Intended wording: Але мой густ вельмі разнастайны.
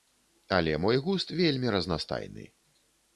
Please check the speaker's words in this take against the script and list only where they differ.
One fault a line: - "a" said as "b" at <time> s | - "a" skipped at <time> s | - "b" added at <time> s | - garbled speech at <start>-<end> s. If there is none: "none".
none